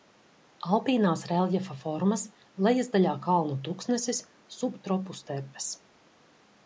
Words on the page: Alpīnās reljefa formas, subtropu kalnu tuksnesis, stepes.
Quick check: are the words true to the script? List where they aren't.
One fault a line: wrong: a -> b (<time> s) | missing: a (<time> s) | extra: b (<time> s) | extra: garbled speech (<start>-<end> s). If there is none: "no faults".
wrong: subtropu -> lejasdaļā (2.7 s)
extra: subtropu (4.6 s)